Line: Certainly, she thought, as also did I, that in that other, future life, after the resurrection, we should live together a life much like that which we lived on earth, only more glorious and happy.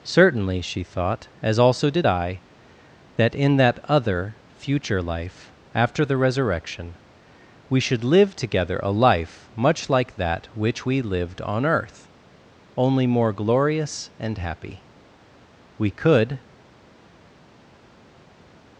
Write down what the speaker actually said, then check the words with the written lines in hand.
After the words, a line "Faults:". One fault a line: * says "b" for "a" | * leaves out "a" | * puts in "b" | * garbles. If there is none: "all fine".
Certainly, she thought, as also did I, that in that other, future life, after the resurrection, we should live together a life much like that which we lived on earth, only more glorious and happy. We could
Faults:
* puts in "We could"